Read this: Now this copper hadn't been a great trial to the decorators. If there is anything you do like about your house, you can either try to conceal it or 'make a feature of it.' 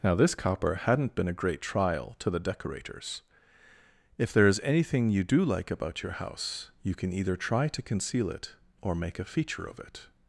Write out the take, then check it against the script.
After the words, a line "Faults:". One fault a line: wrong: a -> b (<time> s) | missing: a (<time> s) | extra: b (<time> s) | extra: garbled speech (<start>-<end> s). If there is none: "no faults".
Now this copper hadn't been a great trial to the decorators. If there is anything you do like about your house, you can either try to conceal it or 'make a feature of it.'
Faults:
no faults